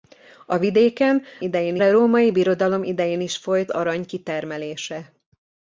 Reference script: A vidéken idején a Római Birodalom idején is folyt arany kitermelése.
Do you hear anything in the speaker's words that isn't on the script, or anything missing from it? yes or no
no